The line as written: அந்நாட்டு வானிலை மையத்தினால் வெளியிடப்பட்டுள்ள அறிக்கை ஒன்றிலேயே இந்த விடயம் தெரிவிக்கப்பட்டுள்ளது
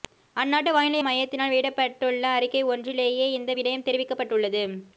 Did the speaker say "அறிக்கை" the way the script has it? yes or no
yes